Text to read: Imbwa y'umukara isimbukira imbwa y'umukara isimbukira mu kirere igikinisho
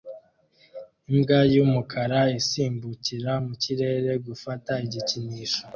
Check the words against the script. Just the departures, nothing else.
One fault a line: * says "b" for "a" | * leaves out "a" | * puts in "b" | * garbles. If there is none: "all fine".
* leaves out "imbwa y'umukara isimbukira"
* puts in "gufata"